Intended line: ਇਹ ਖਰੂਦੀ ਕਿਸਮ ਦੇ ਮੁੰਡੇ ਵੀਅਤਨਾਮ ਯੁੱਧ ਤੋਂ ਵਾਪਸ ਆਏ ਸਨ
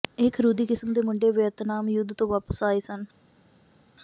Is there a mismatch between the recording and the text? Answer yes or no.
no